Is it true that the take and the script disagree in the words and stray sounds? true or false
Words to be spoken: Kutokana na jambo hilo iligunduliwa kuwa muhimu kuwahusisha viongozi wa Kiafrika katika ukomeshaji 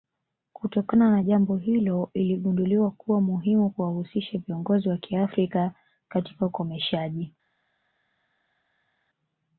false